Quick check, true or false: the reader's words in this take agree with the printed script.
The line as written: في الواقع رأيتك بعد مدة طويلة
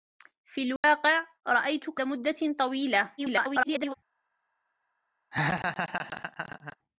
false